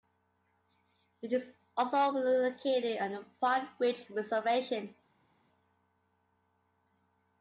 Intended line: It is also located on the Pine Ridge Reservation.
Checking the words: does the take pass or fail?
pass